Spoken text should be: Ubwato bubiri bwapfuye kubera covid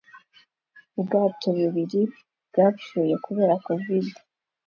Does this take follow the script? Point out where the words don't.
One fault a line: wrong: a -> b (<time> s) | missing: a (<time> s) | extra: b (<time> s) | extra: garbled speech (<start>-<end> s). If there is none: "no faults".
no faults